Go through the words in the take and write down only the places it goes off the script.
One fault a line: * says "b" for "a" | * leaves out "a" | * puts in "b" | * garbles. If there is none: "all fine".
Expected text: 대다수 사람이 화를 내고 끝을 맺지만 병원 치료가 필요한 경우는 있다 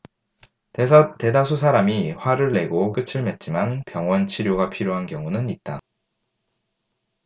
all fine